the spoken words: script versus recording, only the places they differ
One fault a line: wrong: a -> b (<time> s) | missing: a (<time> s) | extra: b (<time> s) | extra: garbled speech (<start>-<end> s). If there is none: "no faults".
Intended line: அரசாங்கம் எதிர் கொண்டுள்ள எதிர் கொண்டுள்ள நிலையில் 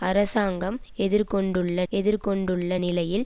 no faults